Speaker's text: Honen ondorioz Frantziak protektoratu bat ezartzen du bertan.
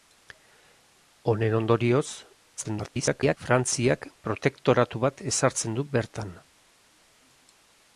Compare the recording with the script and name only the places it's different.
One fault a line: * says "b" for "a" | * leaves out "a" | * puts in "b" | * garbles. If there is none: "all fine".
* garbles